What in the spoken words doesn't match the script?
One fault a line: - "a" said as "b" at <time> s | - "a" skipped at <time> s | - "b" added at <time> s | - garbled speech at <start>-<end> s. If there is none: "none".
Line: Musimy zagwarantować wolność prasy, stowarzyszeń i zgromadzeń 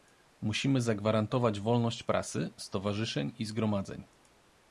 none